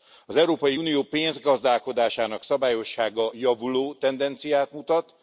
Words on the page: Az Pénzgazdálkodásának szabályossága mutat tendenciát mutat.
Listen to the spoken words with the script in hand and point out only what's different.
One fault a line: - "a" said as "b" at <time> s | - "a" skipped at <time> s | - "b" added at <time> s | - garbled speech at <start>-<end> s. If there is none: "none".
- "Európai Unió" added at 0.3 s
- "mutat" said as "javuló" at 3.3 s